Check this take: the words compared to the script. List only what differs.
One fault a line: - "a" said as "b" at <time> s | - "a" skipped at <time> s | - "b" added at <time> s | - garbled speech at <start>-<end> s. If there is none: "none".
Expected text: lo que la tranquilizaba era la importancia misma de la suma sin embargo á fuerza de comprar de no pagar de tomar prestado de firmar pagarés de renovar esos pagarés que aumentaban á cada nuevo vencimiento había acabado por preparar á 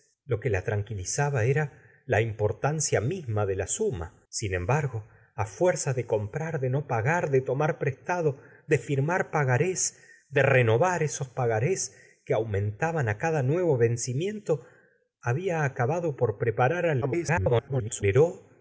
- garbled speech at 17.0-18.0 s